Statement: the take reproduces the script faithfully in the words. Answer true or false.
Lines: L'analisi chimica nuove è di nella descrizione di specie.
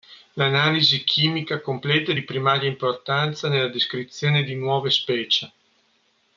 false